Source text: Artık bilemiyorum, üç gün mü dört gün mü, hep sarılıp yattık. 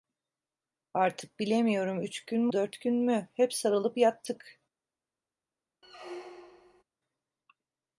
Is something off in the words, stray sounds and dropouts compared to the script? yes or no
yes